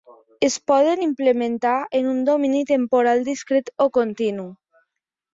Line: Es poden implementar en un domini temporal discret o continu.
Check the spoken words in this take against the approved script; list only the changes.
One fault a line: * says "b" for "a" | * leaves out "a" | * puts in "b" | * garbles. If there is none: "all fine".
all fine